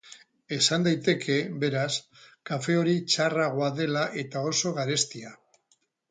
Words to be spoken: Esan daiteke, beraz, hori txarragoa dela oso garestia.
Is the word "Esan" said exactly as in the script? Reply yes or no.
yes